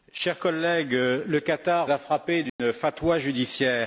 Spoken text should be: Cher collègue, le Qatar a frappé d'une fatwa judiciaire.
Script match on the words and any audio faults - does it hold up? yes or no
no